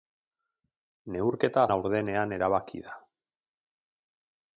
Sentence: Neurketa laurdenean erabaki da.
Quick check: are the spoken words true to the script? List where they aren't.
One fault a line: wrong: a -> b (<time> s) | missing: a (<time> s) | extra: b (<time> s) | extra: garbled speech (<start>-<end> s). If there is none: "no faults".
no faults